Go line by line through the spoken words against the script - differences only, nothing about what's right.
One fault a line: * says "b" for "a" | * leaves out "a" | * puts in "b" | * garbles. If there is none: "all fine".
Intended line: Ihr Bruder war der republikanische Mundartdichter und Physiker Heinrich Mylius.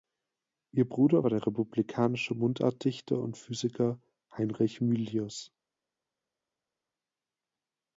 all fine